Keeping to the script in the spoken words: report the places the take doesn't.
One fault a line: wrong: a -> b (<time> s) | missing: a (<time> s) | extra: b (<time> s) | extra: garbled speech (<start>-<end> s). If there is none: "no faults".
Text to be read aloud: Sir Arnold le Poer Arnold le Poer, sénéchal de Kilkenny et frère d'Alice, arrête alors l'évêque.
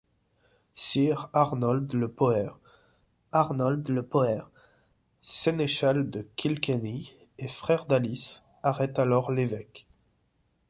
no faults